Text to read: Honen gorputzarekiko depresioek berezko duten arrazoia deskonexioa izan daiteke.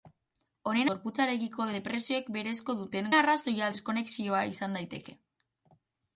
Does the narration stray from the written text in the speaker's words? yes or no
no